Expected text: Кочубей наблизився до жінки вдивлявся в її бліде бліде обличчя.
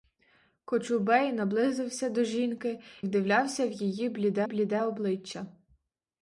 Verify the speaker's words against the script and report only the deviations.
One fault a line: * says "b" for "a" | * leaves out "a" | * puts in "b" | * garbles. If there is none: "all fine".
all fine